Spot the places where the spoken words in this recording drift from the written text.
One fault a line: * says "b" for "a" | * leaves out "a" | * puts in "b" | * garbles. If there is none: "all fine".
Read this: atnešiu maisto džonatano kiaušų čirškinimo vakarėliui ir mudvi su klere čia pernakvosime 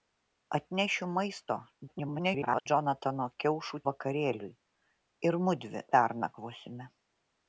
* garbles
* leaves out "čirškinimo"
* leaves out "su klere čia"